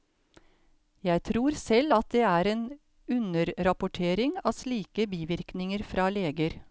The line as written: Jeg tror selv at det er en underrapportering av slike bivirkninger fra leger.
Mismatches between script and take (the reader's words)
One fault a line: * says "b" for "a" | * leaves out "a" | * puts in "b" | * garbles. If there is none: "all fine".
all fine